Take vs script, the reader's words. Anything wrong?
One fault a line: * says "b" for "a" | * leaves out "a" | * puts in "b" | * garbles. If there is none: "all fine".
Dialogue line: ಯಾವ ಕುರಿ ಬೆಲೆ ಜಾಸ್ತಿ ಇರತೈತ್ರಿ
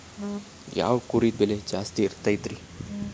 all fine